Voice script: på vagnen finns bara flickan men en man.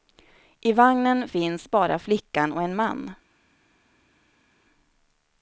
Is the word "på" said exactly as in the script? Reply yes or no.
no